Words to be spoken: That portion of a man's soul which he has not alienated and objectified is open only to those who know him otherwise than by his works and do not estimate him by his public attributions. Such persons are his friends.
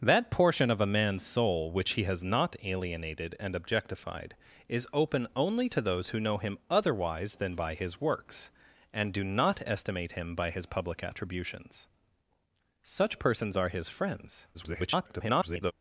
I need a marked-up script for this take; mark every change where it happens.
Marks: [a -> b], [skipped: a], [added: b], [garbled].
That portion of a man's soul which he has not alienated and objectified is open only to those who know him otherwise than by his works and do not estimate him by his public attributions. Such persons are his friends. [garbled]